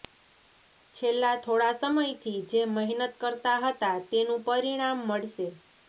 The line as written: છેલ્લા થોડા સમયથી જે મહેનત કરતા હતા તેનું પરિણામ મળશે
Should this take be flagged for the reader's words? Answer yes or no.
no